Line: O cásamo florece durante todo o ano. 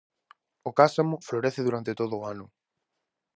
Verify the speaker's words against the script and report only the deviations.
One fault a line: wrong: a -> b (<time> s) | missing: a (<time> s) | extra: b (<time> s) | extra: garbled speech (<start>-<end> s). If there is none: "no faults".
no faults